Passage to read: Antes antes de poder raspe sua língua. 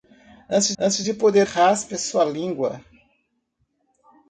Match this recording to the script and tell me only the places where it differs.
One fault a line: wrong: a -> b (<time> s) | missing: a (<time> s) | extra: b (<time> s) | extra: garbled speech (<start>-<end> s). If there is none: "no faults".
no faults